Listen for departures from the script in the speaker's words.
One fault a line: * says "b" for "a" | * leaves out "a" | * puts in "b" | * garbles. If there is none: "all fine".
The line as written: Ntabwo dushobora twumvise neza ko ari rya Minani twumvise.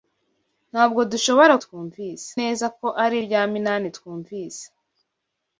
all fine